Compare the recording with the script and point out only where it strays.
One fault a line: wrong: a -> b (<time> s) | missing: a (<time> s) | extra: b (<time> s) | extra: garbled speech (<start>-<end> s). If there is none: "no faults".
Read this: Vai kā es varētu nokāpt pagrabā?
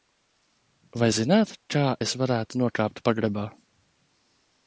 extra: zināt (1.1 s)